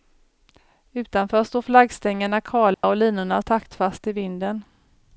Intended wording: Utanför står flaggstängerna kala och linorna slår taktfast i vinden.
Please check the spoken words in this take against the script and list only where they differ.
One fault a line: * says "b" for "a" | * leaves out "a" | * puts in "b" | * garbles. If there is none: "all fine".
* leaves out "slår"